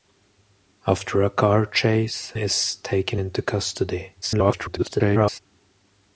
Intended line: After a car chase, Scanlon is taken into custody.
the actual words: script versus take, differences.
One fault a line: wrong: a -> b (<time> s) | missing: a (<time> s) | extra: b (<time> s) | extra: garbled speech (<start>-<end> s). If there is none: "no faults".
missing: Scanlon (2.3 s)
extra: garbled speech (4.2-5.4 s)